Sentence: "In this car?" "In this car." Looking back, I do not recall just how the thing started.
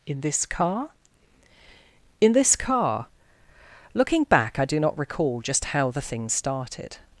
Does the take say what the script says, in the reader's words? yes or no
yes